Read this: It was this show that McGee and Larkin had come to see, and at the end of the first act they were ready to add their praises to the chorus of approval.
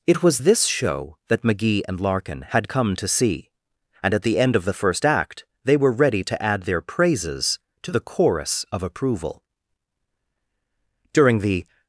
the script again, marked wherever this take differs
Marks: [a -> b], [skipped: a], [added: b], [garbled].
It was this show that McGee and Larkin had come to see, and at the end of the first act they were ready to add their praises to the chorus of approval. [added: During the]